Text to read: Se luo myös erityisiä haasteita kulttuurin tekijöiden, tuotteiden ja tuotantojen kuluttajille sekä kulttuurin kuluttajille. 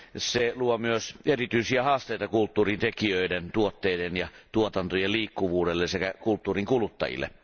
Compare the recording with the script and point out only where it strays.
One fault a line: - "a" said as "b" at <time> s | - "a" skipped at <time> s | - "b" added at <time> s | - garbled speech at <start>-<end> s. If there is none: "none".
- "kuluttajille" said as "liikkuvuudelle" at 5.1 s